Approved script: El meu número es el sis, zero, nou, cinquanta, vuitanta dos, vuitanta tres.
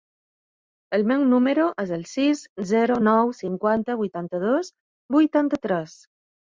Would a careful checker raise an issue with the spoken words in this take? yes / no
no